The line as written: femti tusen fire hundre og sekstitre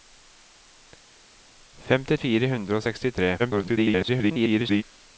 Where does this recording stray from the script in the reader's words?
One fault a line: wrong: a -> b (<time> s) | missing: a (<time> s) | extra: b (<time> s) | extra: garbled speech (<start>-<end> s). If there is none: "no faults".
missing: tusen (2.2 s)
extra: garbled speech (3.4-4.8 s)